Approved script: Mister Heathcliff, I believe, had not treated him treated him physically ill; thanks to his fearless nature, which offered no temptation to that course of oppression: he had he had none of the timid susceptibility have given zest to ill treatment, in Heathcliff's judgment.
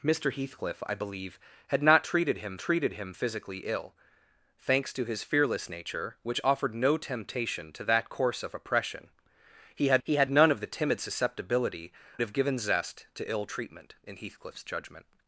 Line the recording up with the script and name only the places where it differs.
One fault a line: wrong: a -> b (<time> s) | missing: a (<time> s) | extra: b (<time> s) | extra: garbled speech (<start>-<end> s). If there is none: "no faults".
no faults